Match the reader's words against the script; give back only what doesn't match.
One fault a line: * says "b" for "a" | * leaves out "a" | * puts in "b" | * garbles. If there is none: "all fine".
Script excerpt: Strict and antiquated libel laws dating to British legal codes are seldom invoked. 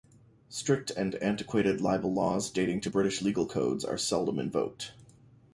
all fine